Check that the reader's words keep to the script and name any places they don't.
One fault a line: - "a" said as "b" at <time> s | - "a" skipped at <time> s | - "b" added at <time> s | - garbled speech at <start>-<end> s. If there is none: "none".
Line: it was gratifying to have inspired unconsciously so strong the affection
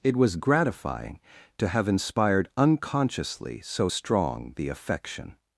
none